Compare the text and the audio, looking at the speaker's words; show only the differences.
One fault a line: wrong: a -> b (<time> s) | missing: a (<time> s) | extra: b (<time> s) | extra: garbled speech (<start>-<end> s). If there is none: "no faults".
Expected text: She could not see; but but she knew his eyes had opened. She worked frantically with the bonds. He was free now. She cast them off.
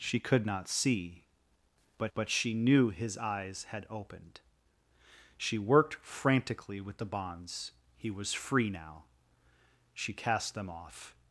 no faults